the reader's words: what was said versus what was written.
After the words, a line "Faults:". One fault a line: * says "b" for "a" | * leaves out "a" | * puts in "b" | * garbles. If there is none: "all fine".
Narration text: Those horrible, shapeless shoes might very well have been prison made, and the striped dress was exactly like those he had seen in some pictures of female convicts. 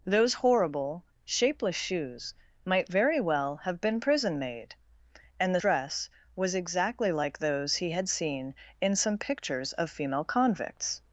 Those horrible, shapeless shoes might very well have been prison made, and the dress was exactly like those he had seen in some pictures of female convicts.
Faults:
* leaves out "striped"